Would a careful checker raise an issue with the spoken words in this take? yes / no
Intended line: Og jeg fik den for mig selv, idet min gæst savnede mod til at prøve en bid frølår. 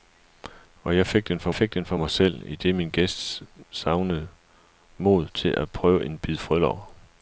yes